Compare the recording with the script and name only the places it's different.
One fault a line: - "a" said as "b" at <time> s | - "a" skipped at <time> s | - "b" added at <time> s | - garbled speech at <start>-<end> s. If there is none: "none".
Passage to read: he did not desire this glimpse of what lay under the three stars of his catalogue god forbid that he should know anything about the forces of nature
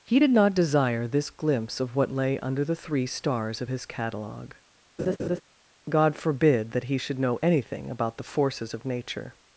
none